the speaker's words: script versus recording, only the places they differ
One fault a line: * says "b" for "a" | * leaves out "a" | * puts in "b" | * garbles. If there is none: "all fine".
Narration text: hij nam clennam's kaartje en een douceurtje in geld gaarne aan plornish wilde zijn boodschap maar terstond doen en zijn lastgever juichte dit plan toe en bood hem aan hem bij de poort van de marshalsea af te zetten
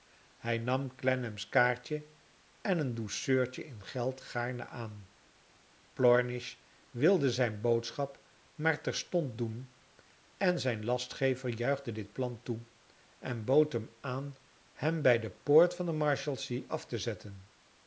all fine